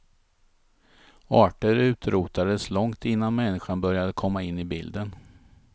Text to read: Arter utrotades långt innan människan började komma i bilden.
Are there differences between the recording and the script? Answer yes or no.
yes